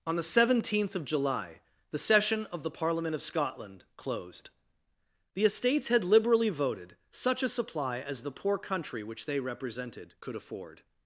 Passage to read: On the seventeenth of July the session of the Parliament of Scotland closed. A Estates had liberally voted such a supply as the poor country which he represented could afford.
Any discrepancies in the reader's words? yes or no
yes